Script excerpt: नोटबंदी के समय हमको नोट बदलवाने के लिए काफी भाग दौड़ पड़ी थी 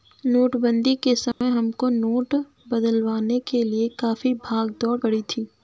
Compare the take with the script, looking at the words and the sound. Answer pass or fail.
fail